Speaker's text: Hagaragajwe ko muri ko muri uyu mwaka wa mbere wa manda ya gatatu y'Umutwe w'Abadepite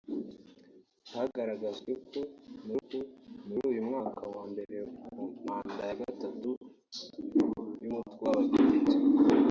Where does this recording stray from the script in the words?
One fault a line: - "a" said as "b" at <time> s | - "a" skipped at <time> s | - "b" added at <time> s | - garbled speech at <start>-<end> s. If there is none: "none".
none